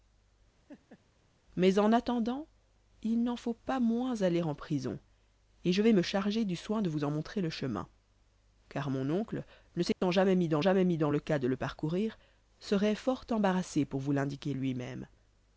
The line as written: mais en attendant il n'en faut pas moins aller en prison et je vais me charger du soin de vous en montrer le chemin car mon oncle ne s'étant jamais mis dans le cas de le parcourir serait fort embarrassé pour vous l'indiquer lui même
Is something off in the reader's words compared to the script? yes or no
yes